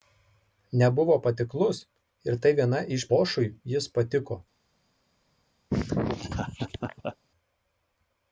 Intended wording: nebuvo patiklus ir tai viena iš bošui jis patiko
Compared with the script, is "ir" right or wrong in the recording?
right